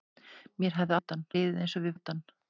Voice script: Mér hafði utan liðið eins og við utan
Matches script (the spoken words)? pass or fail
pass